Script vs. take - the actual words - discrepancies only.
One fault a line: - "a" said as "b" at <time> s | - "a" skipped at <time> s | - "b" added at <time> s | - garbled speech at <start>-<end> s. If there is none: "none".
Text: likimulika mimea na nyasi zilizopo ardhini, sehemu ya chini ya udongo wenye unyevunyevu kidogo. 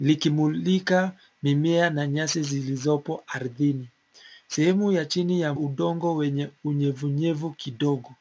none